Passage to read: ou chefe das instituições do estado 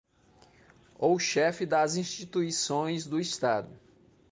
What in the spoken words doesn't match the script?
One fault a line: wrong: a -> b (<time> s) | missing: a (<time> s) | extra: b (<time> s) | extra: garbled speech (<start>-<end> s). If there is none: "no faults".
no faults